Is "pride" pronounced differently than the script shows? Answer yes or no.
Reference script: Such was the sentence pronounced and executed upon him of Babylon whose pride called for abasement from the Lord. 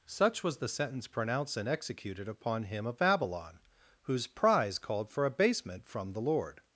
yes